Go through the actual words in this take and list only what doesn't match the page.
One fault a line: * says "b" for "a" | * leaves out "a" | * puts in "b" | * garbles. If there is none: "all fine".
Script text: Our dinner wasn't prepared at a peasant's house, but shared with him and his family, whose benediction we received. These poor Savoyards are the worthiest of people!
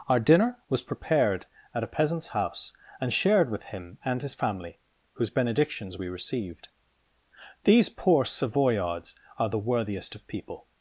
* says "was" for "wasn't"
* says "and" for "but"
* says "benedictions" for "benediction"